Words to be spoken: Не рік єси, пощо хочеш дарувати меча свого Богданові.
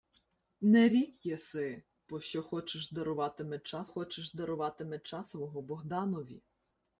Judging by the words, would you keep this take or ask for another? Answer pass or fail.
fail